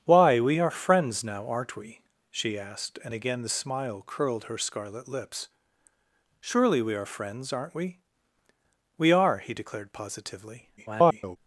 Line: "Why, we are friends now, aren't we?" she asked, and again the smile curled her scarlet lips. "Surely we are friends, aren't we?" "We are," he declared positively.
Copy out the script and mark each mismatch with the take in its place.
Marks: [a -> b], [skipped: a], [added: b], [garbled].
"Why, we are friends now, aren't we?" she asked, and again the smile curled her scarlet lips. "Surely we are friends, aren't we?" "We are," he declared positively. [garbled]